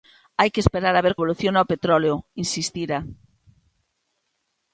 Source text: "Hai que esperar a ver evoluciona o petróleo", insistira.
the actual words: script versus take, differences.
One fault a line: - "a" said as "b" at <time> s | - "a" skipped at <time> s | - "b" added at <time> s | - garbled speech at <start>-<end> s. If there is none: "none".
none